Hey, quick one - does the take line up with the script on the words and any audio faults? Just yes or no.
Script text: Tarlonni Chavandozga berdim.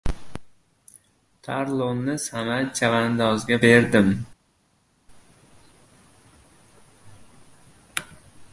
no